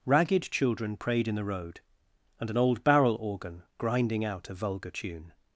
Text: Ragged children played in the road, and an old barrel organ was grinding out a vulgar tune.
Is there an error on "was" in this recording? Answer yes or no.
yes